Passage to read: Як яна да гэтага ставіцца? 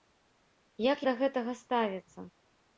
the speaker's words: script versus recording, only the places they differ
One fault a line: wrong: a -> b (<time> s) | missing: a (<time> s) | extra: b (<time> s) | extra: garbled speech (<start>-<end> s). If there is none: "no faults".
missing: яна (1.0 s)